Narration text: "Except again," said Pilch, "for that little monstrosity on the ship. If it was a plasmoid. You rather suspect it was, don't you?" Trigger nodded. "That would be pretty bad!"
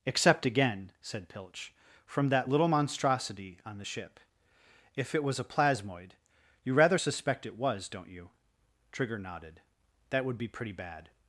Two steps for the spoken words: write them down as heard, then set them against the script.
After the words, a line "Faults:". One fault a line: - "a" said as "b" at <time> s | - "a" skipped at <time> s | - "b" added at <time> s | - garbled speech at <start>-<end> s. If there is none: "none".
"Except again," said Pilch, "from that little monstrosity on the ship. If it was a plasmoid. You rather suspect it was, don't you?" Trigger nodded. "That would be pretty bad!"
Faults:
- "for" said as "from" at 2.0 s